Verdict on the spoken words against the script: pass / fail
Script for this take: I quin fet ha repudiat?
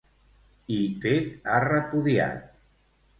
fail